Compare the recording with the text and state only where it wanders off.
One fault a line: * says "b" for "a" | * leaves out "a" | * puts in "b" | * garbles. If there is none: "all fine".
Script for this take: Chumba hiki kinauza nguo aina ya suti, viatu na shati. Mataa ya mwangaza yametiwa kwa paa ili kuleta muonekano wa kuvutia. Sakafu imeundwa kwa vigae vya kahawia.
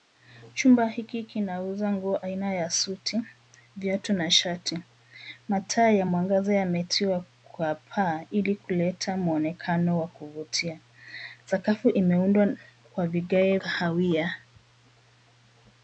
* leaves out "vya"